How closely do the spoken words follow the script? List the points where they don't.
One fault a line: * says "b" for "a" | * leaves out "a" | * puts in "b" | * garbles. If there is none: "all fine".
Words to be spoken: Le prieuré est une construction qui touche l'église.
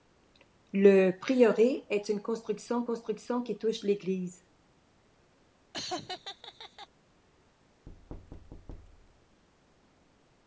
* puts in "construction"